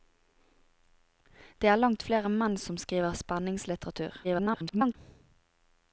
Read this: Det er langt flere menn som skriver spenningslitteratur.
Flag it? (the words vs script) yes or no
yes